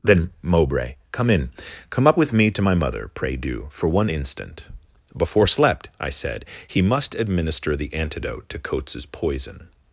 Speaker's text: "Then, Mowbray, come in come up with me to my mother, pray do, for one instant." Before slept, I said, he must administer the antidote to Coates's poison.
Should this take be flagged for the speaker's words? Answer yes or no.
no